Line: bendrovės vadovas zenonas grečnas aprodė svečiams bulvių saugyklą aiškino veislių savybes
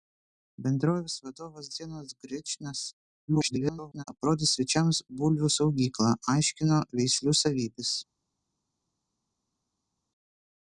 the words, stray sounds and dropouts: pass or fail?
fail